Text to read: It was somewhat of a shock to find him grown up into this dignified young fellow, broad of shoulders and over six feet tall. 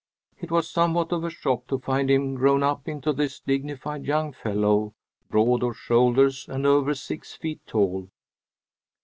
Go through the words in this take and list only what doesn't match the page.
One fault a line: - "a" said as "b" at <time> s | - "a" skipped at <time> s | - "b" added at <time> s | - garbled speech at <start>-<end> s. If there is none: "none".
none